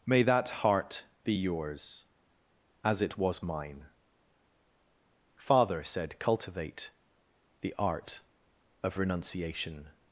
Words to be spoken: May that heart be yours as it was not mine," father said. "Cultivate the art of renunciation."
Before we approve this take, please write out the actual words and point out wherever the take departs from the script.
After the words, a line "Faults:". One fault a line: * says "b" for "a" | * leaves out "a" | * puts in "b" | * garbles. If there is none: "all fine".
May that heart be yours as it was mine," father said. "Cultivate the art of renunciation."
Faults:
* leaves out "not"